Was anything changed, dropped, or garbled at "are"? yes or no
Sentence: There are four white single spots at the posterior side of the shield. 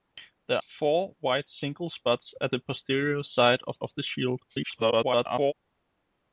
yes